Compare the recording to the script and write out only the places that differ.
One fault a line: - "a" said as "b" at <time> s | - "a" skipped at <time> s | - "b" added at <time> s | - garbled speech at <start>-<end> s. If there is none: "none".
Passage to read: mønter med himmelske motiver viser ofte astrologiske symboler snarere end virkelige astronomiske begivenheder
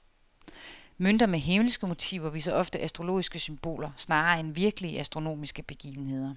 none